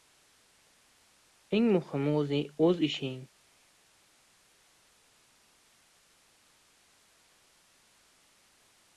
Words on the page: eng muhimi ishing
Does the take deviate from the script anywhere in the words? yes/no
yes